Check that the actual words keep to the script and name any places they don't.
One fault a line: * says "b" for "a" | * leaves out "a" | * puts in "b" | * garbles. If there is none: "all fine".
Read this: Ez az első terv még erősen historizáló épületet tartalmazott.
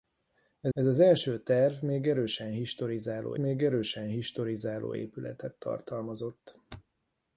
* puts in "ez"
* puts in "még erősen historizáló"